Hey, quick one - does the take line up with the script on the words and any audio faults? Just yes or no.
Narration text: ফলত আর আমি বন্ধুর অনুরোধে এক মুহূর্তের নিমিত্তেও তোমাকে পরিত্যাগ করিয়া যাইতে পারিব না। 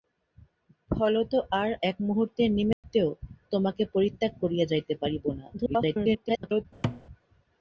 no